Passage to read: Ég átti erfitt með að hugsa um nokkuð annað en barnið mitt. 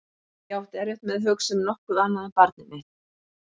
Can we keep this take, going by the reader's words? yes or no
yes